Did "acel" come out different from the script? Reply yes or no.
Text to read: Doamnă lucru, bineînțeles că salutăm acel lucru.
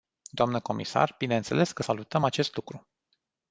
yes